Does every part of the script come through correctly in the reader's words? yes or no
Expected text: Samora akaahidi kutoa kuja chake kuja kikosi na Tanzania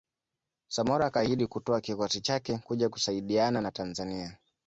no